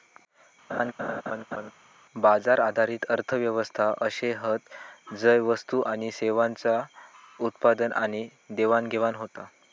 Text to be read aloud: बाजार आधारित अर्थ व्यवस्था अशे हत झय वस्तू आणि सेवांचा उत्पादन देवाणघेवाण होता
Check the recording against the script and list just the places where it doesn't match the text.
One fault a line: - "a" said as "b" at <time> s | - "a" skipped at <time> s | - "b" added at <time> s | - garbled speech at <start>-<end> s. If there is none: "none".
- "आणि" added at 7.9 s